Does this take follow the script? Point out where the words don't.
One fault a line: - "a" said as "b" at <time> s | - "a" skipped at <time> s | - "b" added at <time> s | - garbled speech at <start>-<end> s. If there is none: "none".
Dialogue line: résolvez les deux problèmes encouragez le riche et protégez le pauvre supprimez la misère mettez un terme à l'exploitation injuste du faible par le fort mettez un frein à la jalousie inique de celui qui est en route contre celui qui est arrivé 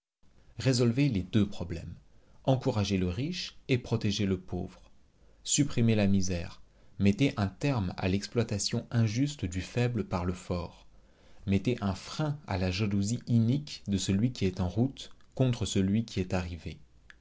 none